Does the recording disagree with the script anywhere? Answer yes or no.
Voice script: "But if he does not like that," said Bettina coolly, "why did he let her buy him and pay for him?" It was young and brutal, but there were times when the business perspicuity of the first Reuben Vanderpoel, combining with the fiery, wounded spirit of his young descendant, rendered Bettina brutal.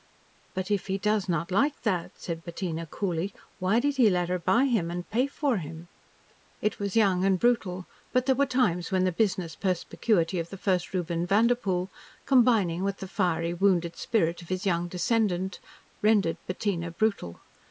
no